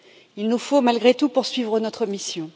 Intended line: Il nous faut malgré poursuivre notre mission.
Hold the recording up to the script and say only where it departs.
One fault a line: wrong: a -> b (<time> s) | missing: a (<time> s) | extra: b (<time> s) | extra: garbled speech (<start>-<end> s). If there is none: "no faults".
extra: tout (1.1 s)